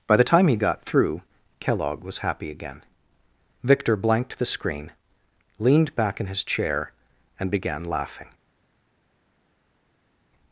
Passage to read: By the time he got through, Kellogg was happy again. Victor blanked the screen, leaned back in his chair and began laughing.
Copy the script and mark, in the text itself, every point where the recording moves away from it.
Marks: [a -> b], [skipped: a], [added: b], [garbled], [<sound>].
By the time he got through, Kellogg was happy again. Victor blanked the screen, leaned back in his chair and began laughing.